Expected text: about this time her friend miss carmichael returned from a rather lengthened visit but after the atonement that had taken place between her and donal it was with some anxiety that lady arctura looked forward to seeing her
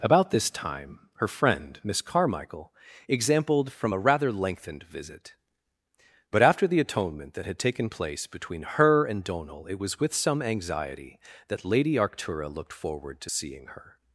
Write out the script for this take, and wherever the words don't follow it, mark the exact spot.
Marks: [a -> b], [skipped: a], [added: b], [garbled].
about this time her friend miss carmichael [returned -> exampled] from a rather lengthened visit but after the atonement that had taken place between her and donal it was with some anxiety that lady arctura looked forward to seeing her